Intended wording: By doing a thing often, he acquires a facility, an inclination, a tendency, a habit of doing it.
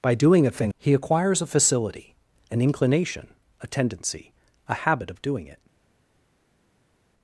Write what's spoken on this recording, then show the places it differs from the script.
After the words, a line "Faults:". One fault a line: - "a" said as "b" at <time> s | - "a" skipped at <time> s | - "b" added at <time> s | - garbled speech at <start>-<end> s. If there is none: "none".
By doing a thing he acquires a facility, an inclination, a tendency, a habit of doing it.
Faults:
- "often" skipped at 0.7 s